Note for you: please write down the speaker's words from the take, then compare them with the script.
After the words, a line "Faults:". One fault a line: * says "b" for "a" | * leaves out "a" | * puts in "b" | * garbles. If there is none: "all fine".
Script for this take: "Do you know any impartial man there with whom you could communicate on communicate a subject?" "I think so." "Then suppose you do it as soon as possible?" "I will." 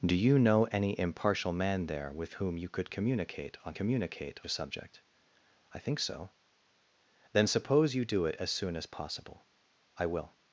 "Do you know any impartial man there with whom you could communicate on communicate a subject?" "I think so." "Then suppose you do it as soon as possible?" "I will."
Faults:
all fine